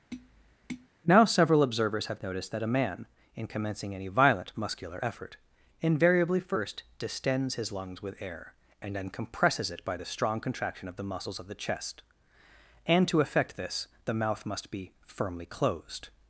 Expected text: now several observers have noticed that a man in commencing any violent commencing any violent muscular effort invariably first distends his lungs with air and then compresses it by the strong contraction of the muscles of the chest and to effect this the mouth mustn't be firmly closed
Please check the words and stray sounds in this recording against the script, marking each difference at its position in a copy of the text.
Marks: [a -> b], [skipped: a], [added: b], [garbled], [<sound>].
[tap] now several observers have noticed that a man in commencing any violent [skipped: commencing any violent] muscular effort invariably first distends his lungs with air and then compresses it by the strong contraction of the muscles of the chest and to effect this the mouth [mustn't -> must] be firmly closed